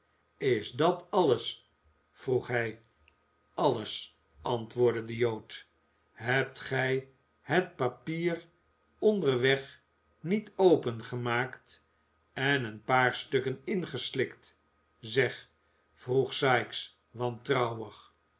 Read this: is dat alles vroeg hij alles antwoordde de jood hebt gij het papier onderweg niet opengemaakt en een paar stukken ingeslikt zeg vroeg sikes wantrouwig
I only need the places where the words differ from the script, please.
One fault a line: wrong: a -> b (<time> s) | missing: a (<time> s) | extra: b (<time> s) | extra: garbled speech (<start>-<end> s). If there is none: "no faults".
no faults